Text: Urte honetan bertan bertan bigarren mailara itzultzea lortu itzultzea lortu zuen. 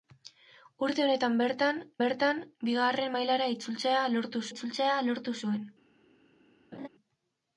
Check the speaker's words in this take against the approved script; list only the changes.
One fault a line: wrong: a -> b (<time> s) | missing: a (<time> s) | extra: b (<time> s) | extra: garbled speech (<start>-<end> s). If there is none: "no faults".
no faults